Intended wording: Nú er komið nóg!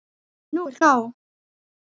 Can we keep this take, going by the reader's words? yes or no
no